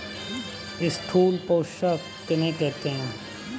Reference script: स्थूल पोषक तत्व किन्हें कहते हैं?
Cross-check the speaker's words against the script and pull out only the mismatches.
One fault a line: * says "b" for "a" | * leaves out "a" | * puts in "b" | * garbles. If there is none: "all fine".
* leaves out "तत्व"